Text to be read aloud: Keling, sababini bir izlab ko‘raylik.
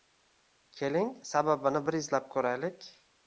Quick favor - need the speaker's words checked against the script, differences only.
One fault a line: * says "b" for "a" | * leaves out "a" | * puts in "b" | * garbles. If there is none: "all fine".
all fine